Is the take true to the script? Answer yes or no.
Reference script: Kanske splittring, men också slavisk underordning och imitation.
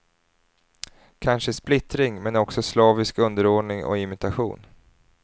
yes